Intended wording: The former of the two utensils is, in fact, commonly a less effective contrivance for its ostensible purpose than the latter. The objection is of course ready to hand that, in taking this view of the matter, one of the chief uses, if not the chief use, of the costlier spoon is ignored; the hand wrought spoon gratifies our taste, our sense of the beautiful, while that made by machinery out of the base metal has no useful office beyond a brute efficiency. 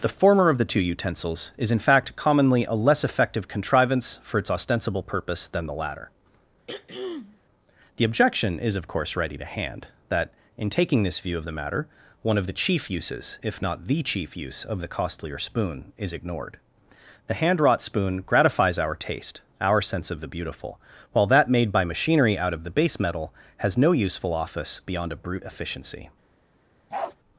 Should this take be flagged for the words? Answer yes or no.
no